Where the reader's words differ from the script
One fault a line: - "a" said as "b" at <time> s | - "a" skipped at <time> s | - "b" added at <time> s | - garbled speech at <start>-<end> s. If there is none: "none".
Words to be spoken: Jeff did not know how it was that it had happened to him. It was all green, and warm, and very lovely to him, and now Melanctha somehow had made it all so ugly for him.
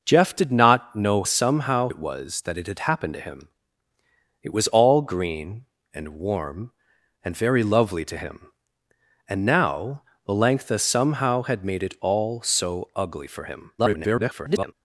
- "how" said as "somehow" at 1.3 s
- garbled speech at 13.8-14.7 s